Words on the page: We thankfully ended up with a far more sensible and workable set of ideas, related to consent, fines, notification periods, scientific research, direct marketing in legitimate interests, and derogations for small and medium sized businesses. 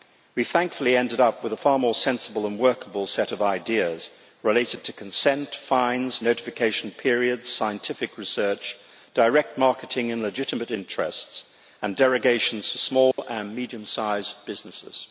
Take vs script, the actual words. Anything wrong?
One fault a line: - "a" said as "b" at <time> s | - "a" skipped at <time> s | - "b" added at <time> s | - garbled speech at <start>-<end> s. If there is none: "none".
none